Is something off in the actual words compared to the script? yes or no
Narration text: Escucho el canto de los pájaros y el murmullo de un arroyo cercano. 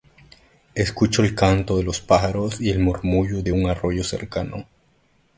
no